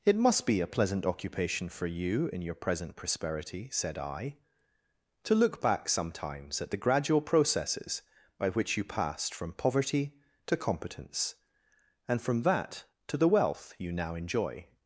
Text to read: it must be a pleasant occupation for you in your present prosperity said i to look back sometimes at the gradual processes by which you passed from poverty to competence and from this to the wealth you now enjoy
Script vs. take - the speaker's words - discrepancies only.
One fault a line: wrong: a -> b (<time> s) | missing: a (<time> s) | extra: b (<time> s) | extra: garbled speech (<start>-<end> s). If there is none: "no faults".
wrong: this -> that (12.4 s)